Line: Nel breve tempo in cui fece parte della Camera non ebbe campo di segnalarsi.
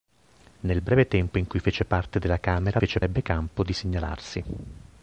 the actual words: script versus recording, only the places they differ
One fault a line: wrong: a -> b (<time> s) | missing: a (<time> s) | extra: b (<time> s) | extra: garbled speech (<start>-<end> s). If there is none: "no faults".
wrong: non -> fece (2.7 s)